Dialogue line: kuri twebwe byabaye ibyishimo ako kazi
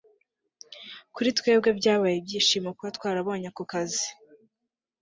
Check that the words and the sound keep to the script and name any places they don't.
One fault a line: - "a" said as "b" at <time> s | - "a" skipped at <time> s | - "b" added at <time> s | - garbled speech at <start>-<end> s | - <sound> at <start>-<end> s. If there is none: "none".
- "kuba twarabonye" added at 2.8 s